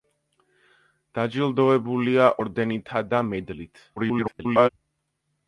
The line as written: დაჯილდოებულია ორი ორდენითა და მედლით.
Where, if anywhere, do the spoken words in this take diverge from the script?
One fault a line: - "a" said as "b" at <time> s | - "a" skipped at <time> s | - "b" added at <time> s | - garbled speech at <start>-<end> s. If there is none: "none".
- "ორი" skipped at 2.3 s
- garbled speech at 4.0-4.7 s